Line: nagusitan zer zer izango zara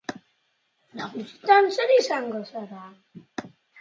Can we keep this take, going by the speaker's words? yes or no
no